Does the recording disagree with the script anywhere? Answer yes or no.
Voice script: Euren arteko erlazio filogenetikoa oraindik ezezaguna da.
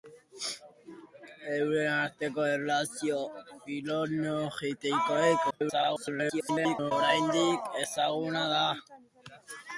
yes